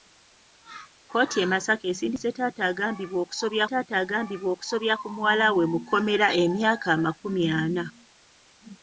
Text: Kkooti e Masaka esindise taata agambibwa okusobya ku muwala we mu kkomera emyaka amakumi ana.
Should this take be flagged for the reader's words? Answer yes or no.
yes